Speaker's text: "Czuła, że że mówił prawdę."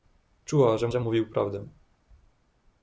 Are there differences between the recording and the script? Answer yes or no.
no